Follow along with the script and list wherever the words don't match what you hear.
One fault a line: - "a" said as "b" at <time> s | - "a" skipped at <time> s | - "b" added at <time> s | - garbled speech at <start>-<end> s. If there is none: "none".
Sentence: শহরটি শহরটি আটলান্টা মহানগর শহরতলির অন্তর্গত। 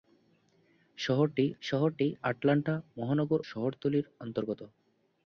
none